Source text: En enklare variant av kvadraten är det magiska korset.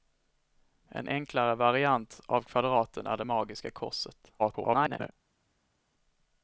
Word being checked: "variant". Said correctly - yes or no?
yes